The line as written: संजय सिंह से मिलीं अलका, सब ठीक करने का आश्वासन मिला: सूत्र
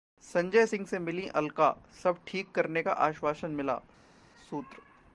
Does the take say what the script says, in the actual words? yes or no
yes